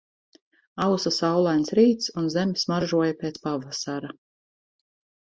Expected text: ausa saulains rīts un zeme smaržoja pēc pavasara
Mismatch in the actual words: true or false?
false